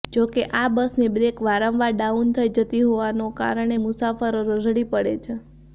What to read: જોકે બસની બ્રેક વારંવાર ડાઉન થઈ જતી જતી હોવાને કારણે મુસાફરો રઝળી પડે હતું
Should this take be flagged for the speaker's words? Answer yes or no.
yes